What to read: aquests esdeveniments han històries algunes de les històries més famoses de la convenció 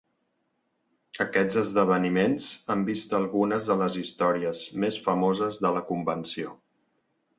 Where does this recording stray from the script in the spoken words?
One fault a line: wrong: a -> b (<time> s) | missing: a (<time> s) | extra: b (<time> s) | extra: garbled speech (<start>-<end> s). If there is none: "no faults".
wrong: històries -> vist (2.9 s)